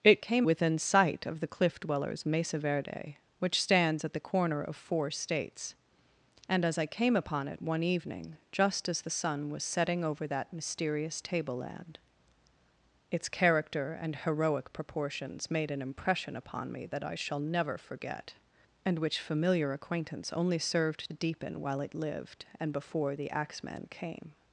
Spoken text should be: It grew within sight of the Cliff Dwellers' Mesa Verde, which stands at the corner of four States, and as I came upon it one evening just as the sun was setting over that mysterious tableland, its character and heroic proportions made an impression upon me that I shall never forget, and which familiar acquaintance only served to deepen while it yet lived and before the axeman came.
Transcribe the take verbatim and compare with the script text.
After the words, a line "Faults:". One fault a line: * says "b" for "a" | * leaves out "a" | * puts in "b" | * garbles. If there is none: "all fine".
It came within sight of the Cliff Dwellers' Mesa Verde, which stands at the corner of four States, and as I came upon it one evening just as the sun was setting over that mysterious tableland, its character and heroic proportions made an impression upon me that I shall never forget, and which familiar acquaintance only served deepen while it lived and before the axeman came.
Faults:
* says "came" for "grew"
* leaves out "to"
* leaves out "yet"